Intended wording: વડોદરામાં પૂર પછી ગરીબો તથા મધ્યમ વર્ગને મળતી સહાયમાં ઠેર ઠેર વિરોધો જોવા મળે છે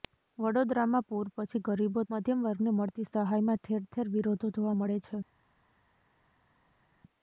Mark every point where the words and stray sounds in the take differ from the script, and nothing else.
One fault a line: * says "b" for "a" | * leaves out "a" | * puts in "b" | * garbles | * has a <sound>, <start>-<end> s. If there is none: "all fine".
* leaves out "તથા"